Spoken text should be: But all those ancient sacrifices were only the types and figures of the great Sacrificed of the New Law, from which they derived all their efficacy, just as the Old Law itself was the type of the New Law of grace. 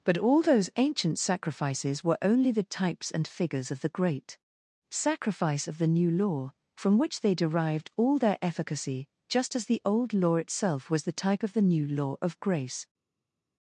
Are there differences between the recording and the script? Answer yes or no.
yes